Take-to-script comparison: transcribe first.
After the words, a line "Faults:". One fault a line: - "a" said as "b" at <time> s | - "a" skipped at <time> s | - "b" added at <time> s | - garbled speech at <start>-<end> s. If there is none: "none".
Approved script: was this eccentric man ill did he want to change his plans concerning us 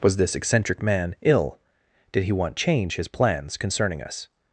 was this eccentric man ill did he want change his plans concerning us
Faults:
- "to" skipped at 2.5 s